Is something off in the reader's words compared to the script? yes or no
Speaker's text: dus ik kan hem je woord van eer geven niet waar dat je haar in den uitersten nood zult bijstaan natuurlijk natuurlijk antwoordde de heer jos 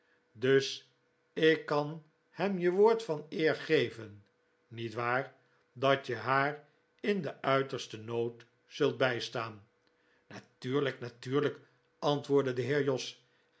no